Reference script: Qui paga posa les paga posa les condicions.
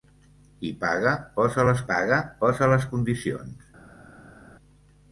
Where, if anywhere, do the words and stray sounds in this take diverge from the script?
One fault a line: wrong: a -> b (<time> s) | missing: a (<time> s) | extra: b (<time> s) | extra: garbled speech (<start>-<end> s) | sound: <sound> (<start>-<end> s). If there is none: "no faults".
no faults